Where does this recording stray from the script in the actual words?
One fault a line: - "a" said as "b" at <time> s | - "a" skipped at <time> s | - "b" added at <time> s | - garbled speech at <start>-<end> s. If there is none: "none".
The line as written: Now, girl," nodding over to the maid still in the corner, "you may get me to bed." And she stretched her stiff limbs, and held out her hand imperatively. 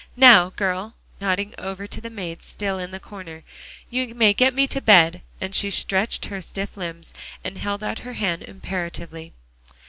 none